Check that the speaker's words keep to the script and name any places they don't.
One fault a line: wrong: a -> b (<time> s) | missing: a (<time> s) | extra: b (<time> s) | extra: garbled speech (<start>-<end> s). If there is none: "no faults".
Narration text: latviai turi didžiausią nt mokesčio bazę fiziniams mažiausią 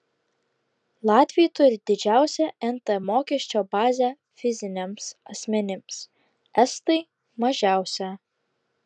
extra: asmenims estai (5.3 s)